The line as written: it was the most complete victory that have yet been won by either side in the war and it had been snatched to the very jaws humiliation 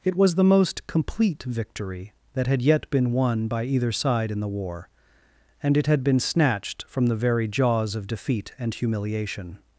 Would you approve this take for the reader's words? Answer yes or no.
no